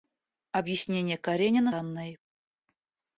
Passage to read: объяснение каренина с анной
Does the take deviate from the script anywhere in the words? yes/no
yes